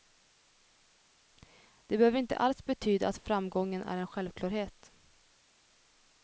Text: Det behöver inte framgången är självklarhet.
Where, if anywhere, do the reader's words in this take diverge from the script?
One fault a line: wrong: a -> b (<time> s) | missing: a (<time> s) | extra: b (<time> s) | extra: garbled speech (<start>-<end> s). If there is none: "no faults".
extra: alls betyda att (2.4 s)
extra: en (4.0 s)